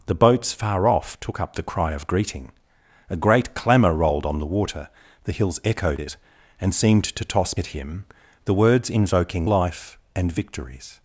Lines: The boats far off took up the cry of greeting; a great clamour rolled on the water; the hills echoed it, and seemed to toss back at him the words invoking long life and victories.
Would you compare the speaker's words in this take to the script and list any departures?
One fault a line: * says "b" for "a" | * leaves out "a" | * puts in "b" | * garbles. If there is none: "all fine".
* leaves out "back"
* leaves out "long"